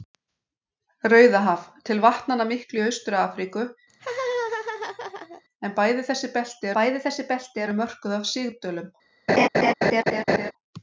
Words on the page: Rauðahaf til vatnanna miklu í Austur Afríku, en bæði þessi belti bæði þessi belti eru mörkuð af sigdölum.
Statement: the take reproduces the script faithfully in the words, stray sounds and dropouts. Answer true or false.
false